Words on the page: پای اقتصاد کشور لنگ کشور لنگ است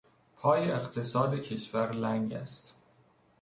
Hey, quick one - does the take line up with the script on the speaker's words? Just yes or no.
no